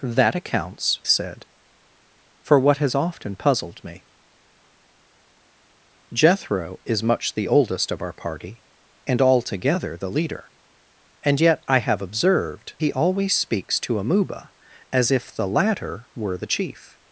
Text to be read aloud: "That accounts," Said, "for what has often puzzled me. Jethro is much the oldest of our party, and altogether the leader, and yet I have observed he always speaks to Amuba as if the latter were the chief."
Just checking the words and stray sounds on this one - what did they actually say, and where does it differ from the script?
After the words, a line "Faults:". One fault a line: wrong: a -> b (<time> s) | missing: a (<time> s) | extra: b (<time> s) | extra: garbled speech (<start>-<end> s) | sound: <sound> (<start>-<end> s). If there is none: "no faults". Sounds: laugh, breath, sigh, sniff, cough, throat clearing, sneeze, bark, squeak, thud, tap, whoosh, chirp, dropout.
"That accounts," Said, "for what has often puzzled me. Jethro is much the oldest of our party, and altogether the leader, and yet I have observed he always speaks to Amuba as if the latter were the chief."
Faults:
no faults